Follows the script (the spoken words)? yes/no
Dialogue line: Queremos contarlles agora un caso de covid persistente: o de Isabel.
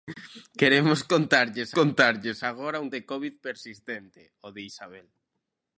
no